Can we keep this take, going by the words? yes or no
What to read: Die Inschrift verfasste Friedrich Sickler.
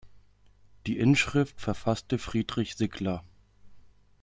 yes